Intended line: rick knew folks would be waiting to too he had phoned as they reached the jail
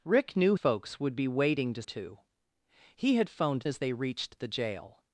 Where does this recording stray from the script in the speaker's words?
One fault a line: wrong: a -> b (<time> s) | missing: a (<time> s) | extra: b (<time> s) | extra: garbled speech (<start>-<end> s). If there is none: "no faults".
no faults